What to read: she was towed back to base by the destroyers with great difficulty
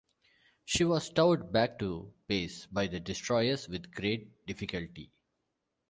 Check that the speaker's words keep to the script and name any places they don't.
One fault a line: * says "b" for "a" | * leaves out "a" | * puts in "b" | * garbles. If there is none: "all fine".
all fine